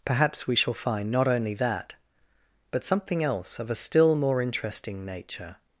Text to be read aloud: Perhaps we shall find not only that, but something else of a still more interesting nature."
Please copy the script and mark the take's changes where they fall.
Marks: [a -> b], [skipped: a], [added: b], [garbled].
Perhaps we shall find not only that, but something else of a still more interesting nature."